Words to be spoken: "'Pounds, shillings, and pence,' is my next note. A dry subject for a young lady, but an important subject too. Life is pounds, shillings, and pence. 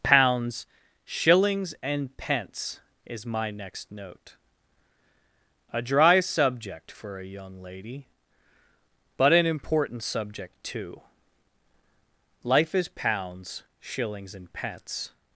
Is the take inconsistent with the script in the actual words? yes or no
no